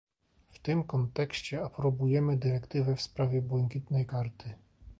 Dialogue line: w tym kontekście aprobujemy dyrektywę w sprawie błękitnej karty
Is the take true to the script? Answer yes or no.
yes